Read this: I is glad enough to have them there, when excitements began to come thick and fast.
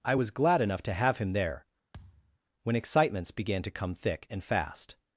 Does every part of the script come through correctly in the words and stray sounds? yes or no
no